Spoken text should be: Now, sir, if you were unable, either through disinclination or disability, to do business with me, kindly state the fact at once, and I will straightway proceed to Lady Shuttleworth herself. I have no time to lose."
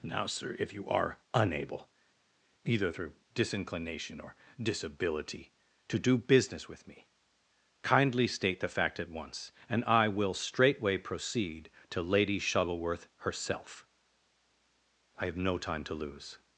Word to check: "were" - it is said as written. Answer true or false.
false